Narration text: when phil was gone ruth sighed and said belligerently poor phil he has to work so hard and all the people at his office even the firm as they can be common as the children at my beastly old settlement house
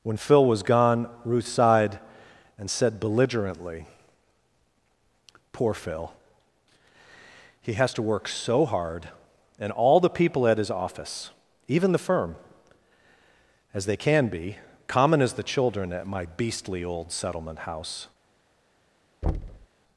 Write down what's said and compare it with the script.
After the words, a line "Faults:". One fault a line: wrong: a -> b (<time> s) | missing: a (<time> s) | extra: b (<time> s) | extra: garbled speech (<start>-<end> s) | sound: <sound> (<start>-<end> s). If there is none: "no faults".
when phil was gone ruth sighed and said belligerently poor phil he has to work so hard and all the people at his office even the firm as they can be common as the children at my beastly old settlement house
Faults:
sound: thud (19.2-19.7 s)